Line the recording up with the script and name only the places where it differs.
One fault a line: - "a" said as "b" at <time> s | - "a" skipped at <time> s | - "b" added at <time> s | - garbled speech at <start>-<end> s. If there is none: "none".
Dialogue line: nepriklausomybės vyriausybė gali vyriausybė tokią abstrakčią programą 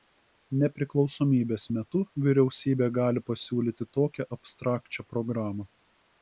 - "metu" added at 1.8 s
- "vyriausybė" said as "pasiūlyti" at 3.3 s